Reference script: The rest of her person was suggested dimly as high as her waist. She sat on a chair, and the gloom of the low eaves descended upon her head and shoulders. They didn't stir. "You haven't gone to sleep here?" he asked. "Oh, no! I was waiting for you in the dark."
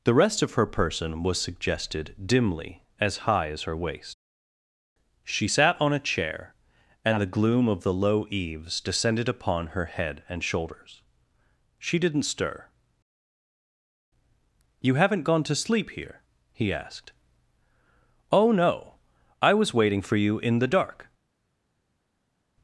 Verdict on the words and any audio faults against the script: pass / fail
fail